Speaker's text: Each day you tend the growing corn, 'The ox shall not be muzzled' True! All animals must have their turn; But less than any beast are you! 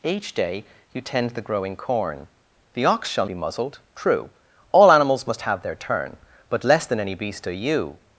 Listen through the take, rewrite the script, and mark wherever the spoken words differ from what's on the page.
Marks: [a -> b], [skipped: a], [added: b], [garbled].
Each day you tend the growing corn, 'The ox shall [skipped: not] be muzzled' True! All animals must have their turn; But less than any beast are you!